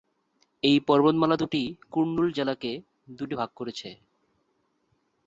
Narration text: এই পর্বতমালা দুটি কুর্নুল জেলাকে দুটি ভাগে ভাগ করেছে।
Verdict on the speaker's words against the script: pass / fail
fail